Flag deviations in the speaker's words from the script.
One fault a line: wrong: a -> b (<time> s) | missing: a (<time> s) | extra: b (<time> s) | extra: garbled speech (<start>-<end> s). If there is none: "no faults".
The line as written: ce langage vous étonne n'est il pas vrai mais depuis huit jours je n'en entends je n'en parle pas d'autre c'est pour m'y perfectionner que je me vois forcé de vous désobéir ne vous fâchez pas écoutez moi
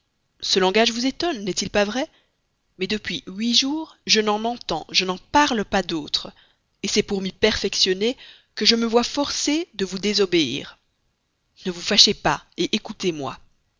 no faults